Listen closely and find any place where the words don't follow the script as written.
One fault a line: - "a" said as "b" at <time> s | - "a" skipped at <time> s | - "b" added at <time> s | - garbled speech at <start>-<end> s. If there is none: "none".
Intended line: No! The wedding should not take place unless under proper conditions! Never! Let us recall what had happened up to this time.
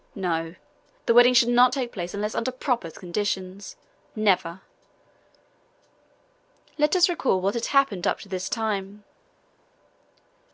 none